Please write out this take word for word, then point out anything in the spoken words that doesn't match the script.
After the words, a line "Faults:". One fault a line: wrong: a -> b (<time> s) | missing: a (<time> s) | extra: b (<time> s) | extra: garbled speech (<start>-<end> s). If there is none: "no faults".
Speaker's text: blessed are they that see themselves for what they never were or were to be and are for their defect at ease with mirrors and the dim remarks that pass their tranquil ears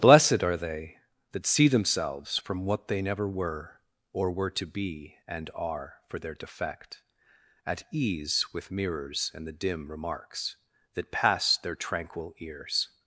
blessed are they that see themselves from what they never were or were to be and are for their defect at ease with mirrors and the dim remarks that pass their tranquil ears
Faults:
wrong: for -> from (2.4 s)